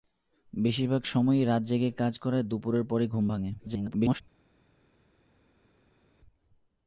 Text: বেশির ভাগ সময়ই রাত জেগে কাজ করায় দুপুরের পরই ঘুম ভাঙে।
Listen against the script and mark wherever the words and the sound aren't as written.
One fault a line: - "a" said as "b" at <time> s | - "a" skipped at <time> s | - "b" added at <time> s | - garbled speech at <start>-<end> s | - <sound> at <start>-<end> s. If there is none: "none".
- garbled speech at 3.6-4.2 s